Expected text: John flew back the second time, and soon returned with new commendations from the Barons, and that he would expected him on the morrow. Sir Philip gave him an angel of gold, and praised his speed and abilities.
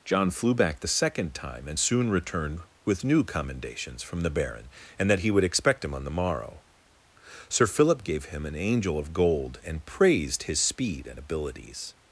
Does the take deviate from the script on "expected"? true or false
true